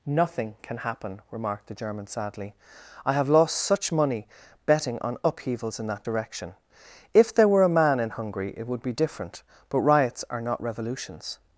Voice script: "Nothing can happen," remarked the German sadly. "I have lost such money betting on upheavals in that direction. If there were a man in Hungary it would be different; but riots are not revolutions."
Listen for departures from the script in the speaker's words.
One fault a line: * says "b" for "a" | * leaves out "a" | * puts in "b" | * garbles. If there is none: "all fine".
all fine